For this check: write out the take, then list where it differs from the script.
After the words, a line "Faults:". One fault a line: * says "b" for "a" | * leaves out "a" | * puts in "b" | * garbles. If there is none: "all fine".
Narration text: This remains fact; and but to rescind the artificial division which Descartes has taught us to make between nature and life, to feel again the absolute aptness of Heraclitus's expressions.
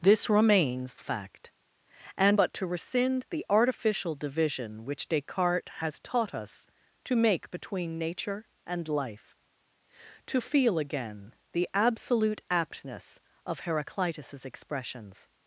This remains fact; and but to rescind the artificial division which Descartes has taught us to make between nature and life, to feel again the absolute aptness of Heraclitus's expressions.
Faults:
all fine